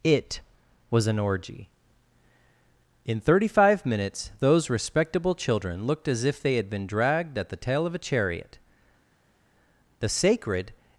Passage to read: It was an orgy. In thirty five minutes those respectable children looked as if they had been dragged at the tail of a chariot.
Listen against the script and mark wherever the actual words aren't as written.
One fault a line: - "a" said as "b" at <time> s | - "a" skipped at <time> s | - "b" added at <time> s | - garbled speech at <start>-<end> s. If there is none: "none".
- "The sacred" added at 10.0 s